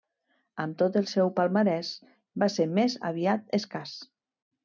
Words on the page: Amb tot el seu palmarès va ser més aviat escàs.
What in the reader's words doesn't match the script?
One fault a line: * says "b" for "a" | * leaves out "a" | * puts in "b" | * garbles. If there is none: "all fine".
all fine